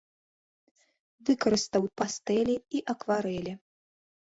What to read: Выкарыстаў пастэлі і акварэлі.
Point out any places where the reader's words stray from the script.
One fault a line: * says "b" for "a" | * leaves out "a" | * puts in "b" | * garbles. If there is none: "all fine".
all fine